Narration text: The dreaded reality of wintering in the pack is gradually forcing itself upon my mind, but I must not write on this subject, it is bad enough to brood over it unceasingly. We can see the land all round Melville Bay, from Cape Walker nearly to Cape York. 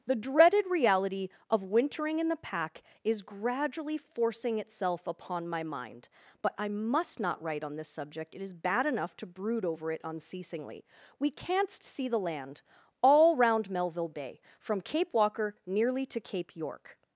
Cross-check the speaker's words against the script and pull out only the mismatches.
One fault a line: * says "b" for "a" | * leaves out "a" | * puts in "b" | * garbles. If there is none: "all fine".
* says "canst" for "can"